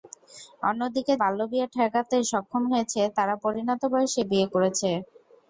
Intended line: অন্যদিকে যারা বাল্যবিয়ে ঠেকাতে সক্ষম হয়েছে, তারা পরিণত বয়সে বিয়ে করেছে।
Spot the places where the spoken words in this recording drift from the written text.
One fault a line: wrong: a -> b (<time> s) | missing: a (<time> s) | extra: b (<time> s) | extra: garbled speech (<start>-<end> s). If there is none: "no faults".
missing: যারা (1.1 s)